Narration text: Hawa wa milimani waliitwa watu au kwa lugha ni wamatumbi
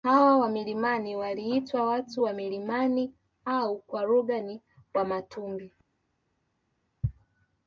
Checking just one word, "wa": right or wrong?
right